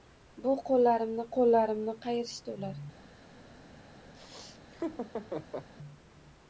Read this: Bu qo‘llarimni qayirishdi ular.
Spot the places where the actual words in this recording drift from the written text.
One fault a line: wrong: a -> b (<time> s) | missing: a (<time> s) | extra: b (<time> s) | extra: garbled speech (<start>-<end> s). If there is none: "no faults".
extra: qo‘llarimni (1.4 s)